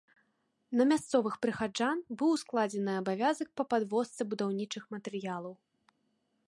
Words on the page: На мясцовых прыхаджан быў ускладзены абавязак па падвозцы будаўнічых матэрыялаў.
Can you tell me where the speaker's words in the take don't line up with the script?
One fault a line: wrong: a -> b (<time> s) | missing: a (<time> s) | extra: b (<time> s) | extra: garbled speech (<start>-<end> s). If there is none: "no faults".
no faults